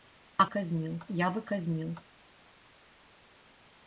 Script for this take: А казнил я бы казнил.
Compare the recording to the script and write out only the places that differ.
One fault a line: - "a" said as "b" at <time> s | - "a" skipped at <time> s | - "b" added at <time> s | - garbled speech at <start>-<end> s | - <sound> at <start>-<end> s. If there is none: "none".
none